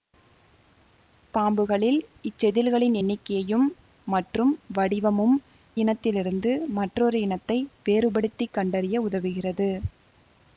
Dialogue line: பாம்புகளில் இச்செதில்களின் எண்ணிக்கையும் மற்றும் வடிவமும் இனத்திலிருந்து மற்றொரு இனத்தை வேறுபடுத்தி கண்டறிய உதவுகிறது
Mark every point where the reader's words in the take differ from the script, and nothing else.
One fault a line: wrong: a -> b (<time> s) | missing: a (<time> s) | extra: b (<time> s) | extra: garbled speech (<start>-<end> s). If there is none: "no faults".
no faults